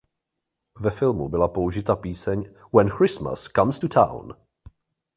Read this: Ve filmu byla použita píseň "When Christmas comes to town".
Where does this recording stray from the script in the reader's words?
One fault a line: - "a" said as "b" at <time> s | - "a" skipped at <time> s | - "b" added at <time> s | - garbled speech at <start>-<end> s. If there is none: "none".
none